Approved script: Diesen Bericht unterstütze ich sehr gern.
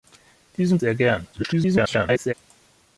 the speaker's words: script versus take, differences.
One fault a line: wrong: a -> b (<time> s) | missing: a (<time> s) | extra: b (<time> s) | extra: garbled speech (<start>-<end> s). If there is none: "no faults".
missing: Bericht unterstütze ich (0.8 s)
extra: garbled speech (1.3-2.3 s)